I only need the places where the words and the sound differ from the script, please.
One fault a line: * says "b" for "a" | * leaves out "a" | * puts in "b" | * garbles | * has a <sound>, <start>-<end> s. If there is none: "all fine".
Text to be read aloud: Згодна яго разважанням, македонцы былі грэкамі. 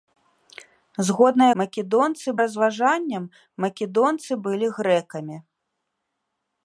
* says "македонцы" for "яго"